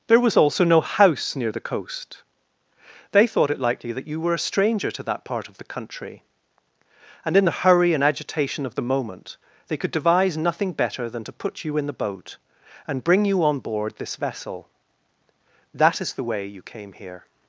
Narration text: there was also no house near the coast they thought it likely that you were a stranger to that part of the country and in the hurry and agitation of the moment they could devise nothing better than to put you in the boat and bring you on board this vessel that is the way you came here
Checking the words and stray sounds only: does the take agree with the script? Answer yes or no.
yes